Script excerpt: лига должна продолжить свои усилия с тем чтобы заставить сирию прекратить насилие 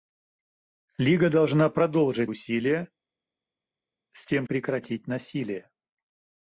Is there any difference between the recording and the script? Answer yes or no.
yes